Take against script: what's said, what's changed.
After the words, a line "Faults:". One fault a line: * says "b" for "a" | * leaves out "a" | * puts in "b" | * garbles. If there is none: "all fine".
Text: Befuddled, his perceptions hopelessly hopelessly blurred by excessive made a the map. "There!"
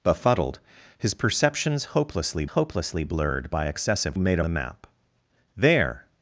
Befuddled, his perceptions hopelessly hopelessly blurred by excessive made a the map. "There!"
Faults:
all fine